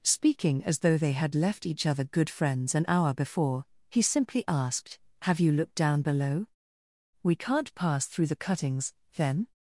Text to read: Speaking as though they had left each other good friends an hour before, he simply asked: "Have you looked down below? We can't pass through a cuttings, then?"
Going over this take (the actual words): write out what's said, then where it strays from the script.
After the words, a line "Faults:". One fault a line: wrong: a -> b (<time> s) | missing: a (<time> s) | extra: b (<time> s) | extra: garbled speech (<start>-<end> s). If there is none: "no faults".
Speaking as though they had left each other good friends an hour before, he simply asked: "Have you looked down below? We can't pass through the cuttings, then?"
Faults:
wrong: a -> the (8.3 s)